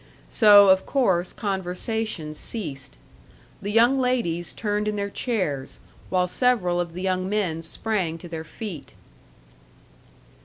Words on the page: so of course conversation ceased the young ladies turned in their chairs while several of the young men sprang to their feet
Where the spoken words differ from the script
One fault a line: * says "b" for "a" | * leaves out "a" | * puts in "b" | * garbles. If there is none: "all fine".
all fine